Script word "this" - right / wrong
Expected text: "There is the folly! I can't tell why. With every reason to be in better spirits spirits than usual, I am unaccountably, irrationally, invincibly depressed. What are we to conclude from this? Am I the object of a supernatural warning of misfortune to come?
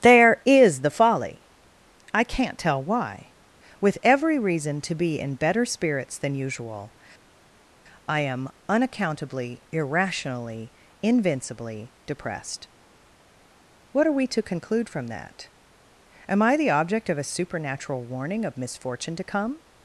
wrong